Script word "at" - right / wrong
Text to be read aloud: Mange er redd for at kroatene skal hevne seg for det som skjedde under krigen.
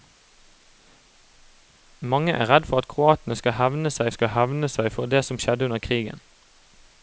right